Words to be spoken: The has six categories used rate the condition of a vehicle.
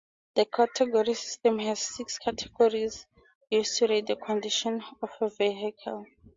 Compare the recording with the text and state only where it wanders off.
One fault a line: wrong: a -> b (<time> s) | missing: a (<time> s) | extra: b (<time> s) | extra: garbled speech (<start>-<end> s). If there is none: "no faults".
extra: category system (0.5 s)
extra: to (3.8 s)